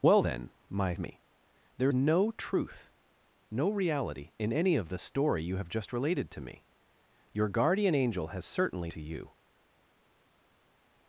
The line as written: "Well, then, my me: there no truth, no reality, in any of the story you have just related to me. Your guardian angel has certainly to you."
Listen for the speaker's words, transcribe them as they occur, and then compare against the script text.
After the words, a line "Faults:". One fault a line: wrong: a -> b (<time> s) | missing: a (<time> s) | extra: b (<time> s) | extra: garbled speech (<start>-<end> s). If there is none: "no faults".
"Well, then, my me: there no truth, no reality, in any of the story you have just related to me. Your guardian angel has certainly to you."
Faults:
no faults